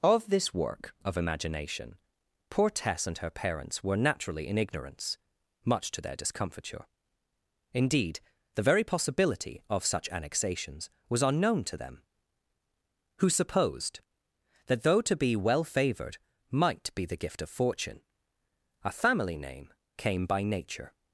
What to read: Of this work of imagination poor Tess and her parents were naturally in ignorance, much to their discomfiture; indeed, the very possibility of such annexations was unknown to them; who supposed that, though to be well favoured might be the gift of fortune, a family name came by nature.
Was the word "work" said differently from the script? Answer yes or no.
no